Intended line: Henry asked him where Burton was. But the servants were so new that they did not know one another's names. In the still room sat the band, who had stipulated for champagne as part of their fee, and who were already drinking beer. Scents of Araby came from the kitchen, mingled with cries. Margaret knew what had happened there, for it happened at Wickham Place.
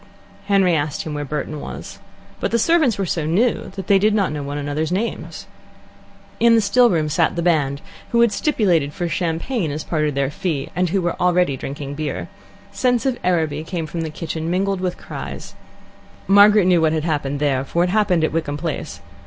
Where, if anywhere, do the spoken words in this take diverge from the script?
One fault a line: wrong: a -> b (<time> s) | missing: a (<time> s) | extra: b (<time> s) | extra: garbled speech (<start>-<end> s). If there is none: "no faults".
no faults